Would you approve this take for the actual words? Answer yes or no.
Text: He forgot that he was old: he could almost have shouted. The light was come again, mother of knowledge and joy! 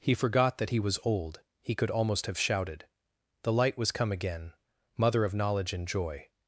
yes